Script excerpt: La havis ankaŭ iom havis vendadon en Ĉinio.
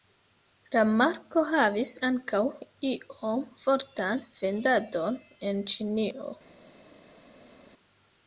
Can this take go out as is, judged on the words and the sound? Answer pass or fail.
fail